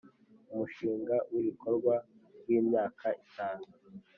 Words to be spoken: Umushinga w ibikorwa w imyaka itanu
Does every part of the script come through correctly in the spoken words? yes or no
yes